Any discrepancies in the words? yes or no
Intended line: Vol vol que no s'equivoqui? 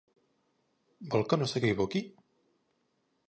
yes